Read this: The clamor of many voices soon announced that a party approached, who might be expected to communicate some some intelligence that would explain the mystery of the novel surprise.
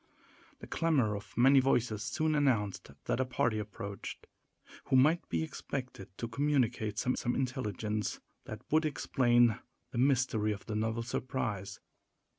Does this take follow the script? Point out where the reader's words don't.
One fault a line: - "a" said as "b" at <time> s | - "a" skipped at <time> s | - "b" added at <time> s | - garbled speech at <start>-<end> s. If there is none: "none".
none